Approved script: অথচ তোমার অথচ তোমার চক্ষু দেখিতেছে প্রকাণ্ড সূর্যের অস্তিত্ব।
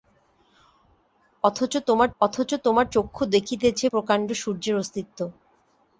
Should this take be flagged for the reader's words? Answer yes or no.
no